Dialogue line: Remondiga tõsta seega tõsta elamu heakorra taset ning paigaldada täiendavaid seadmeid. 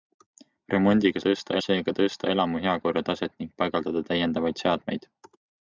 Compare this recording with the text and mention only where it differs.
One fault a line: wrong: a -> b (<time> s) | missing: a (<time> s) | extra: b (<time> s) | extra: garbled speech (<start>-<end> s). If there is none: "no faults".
no faults